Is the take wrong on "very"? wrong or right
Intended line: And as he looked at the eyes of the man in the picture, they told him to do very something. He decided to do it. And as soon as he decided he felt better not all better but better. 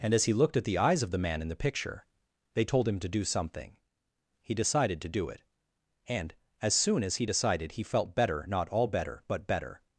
wrong